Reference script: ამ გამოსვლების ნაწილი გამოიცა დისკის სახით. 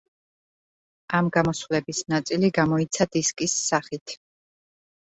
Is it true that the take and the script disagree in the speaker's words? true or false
false